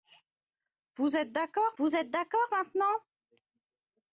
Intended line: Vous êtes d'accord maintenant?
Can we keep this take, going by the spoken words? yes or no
no